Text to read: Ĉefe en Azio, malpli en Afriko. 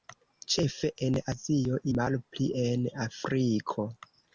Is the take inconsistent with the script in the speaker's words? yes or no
no